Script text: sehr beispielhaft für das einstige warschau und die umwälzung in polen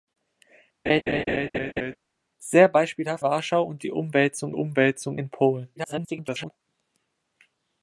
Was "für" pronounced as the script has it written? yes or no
no